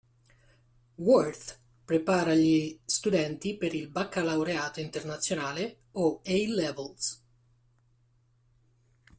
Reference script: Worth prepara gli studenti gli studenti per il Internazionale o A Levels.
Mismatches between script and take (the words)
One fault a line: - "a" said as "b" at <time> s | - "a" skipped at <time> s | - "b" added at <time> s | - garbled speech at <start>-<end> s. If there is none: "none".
- "gli studenti" skipped at 3.5 s
- "Baccalaureato" added at 3.9 s